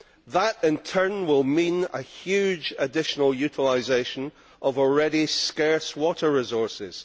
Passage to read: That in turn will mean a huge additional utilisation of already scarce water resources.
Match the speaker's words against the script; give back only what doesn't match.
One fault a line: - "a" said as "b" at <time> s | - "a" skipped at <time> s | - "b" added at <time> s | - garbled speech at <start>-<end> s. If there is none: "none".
none